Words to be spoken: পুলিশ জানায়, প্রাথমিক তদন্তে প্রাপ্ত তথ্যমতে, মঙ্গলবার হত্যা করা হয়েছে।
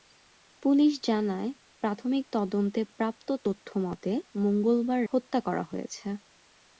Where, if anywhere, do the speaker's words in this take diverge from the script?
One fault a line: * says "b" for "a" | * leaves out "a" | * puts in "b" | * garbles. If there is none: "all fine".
all fine